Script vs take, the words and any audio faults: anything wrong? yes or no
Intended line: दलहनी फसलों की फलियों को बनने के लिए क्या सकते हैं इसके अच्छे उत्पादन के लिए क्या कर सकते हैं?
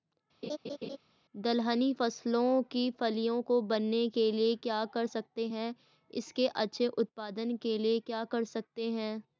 yes